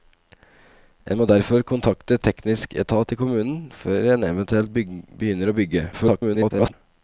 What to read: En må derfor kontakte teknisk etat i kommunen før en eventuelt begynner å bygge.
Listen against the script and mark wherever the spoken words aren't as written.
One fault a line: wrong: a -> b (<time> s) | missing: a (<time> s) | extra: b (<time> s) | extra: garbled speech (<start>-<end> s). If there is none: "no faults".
extra: garbled speech (5.9-6.7 s)